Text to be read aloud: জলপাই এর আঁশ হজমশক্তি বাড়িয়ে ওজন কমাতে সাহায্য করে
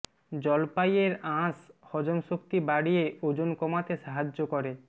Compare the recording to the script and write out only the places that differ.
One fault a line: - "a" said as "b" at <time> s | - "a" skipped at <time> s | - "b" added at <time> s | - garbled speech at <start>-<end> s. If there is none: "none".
none